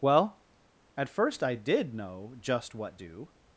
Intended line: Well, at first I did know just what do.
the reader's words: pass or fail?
pass